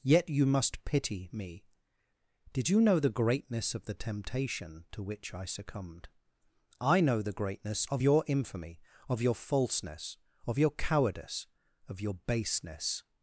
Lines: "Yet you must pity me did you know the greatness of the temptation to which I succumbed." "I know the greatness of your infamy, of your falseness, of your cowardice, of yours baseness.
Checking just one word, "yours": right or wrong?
wrong